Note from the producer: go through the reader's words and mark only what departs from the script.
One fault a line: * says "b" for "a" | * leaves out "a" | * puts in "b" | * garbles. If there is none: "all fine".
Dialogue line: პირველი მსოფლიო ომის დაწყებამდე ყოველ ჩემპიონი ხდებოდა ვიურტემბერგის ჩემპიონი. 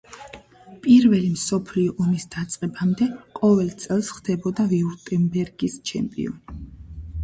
* says "წელს" for "ჩემპიონი"